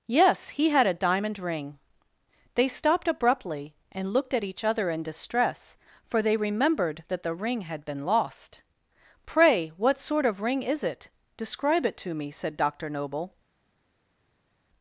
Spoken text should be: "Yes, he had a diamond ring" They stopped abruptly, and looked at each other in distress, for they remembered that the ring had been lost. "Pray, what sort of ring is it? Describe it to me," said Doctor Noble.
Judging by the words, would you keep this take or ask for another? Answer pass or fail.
pass